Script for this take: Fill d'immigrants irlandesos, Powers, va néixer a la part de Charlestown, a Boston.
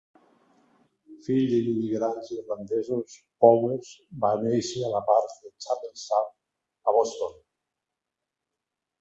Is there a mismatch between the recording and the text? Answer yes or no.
no